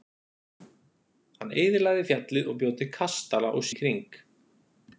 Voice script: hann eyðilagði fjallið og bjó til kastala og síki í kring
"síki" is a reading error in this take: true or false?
true